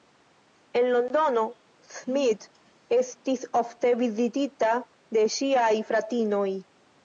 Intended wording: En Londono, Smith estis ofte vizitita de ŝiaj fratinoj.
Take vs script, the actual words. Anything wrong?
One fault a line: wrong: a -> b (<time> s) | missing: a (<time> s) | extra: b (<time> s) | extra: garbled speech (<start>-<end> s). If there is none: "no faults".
no faults